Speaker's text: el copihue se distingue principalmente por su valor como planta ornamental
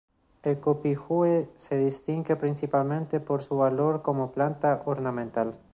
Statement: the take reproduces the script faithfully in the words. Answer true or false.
true